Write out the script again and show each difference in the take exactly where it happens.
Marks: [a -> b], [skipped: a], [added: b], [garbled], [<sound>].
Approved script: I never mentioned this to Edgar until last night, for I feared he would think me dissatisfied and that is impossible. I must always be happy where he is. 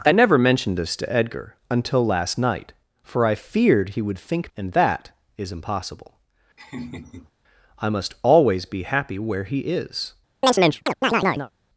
I never mentioned this to Edgar until last night, for I feared he would think [skipped: me dissatisfied] and that is impossible. [laugh] I must always be happy where he is. [chirp]